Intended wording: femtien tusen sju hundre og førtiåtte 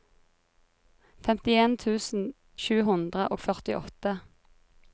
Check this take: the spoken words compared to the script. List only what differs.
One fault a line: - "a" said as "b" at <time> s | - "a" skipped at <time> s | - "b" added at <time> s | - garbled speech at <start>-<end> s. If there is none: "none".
none